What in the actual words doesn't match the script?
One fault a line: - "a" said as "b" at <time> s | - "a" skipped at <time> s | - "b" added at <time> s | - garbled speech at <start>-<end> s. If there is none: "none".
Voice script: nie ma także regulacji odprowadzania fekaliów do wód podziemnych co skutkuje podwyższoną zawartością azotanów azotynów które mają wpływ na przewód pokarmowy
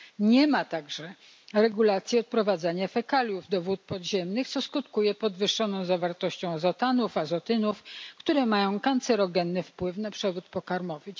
- "kancerogenny" added at 8.8 s